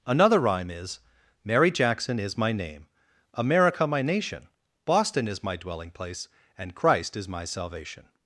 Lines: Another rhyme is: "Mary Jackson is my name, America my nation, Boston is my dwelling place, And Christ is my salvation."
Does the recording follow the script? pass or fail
pass